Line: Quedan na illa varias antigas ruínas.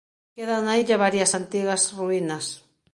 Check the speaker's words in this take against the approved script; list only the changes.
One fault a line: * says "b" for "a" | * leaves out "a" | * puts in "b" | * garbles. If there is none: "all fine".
all fine